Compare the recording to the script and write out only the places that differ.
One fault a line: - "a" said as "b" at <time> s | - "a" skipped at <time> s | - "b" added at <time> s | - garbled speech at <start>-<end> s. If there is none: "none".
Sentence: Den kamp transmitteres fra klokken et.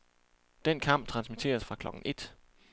none